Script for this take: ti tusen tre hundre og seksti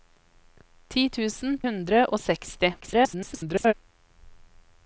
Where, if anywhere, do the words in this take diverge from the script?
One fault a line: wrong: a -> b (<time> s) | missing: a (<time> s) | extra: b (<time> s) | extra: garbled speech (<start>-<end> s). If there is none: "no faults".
missing: tre (1.5 s)
extra: garbled speech (2.8-3.7 s)